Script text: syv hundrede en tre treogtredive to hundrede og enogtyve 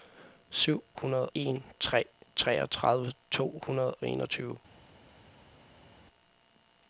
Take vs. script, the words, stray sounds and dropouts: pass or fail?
pass